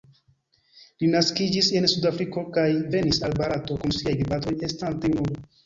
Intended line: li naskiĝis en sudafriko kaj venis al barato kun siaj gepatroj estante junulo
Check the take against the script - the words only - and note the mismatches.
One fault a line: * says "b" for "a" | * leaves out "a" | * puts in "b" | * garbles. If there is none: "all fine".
all fine